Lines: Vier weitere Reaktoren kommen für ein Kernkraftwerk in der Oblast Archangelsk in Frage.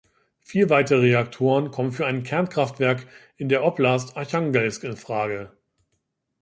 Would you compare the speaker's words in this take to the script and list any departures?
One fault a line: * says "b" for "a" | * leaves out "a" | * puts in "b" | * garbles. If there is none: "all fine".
all fine